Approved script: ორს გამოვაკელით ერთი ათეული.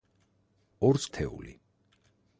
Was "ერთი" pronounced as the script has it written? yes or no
no